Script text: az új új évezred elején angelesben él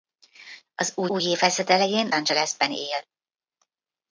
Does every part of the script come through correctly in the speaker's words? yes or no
yes